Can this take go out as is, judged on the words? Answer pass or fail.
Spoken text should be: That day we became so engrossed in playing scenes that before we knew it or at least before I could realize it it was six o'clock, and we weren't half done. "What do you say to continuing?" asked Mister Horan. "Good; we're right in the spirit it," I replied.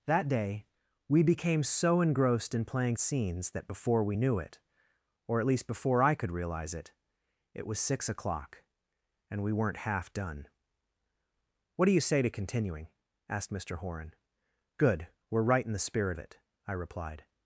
pass